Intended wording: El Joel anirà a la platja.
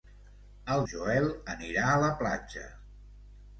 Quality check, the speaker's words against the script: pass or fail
pass